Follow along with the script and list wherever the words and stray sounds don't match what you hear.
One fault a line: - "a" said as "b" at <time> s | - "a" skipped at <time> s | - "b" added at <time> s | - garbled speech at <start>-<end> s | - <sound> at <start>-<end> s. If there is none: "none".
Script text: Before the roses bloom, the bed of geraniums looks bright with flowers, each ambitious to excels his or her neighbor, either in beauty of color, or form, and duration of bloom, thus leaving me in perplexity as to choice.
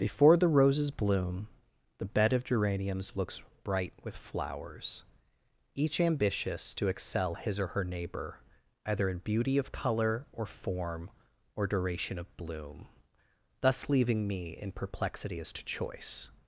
- "excels" said as "excel" at 6.9 s
- "and" said as "or" at 11.6 s